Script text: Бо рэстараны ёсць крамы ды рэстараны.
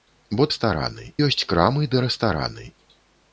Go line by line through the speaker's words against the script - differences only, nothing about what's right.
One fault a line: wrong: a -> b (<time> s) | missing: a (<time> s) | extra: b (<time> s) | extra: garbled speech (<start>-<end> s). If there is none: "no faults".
no faults